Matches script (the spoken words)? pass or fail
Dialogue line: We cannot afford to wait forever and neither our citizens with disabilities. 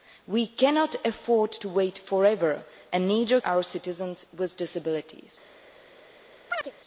pass